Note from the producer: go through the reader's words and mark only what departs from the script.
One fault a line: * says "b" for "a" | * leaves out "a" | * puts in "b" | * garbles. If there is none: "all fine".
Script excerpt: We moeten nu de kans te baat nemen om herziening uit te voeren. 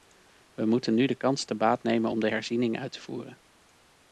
* puts in "de"